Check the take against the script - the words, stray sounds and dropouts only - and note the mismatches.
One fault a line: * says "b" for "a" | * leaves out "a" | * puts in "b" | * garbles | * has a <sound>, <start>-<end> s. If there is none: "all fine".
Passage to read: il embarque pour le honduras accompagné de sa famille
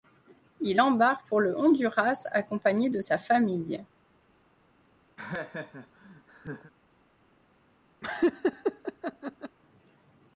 * has a laugh, 5.2-6.7 s
* has a laugh, 8.0-9.6 s